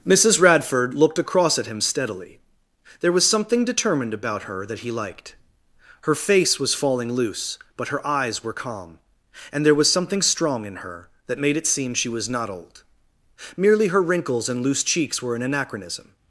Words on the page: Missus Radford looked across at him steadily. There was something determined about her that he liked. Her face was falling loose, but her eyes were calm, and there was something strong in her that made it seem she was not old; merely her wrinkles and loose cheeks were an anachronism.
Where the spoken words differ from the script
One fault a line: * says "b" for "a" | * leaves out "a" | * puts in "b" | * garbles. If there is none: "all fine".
all fine